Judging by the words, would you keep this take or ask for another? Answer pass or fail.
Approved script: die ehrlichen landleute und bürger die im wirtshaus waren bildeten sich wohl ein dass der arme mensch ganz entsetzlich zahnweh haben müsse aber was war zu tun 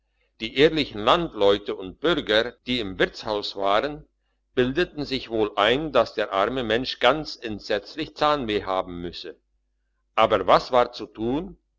pass